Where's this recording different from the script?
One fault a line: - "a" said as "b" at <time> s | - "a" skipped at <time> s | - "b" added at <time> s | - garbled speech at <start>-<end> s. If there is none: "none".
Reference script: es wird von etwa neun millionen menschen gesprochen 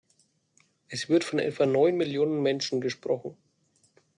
none